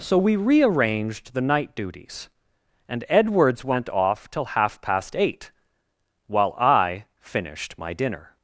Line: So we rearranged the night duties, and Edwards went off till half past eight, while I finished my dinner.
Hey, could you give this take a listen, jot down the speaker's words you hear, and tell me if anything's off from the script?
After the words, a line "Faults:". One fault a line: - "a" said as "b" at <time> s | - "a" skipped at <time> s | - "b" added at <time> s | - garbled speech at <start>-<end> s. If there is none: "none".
So we rearranged the night duties, and Edwards went off till half past eight, while I finished my dinner.
Faults:
none